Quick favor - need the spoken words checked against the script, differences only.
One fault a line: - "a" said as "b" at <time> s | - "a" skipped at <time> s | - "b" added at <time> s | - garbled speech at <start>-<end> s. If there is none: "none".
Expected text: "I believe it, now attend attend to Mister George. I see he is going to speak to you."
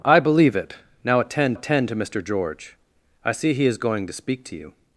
none